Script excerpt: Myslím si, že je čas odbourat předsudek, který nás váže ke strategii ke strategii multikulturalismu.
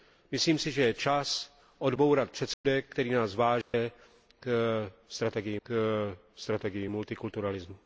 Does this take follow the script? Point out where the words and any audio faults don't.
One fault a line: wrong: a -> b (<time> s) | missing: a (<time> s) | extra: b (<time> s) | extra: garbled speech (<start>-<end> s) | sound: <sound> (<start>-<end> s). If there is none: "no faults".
sound: dropout (2.5-2.6 s)
sound: dropout (3.6-3.7 s)